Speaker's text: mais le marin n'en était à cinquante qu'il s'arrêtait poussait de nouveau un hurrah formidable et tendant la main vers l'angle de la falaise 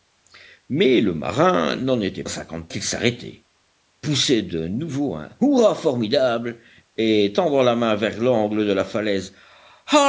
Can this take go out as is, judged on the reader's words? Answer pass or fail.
pass